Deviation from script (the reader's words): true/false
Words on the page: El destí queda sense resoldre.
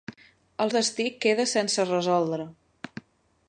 false